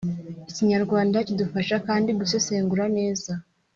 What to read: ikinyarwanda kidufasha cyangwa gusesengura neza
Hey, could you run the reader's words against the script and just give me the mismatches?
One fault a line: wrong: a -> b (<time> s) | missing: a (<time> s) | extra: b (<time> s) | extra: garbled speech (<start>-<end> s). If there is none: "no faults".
wrong: cyangwa -> kandi (1.9 s)